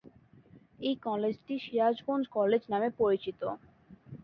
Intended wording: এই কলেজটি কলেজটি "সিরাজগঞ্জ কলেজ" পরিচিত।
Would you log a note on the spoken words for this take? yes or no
yes